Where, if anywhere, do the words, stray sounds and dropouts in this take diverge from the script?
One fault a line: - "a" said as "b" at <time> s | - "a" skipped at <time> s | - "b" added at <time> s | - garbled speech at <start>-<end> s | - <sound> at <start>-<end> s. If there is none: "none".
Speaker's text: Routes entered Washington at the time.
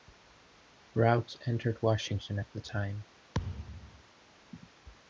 - thud at 3.3-4.0 s